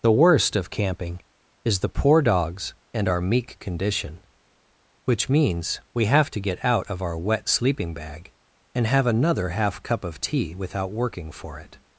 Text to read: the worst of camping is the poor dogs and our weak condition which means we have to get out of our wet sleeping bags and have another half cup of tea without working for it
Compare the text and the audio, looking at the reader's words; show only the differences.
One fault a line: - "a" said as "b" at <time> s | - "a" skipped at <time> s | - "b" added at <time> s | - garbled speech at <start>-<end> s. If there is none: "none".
- "weak" said as "meek" at 3.2 s
- "bags" said as "bag" at 7.9 s